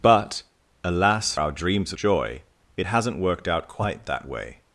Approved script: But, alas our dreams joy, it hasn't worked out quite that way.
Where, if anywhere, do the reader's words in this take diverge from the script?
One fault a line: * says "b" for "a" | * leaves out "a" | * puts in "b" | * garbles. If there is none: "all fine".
all fine